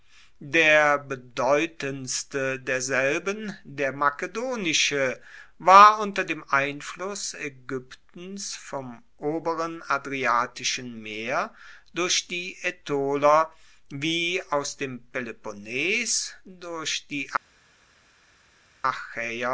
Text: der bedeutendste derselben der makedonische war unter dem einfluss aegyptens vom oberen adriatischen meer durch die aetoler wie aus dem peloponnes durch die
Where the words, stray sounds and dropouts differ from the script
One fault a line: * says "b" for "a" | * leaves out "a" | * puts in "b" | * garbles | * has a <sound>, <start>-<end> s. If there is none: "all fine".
all fine